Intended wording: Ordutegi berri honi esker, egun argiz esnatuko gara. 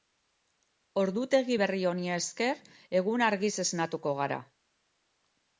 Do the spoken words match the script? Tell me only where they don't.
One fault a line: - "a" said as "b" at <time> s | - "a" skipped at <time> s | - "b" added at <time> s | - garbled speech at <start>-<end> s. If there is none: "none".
none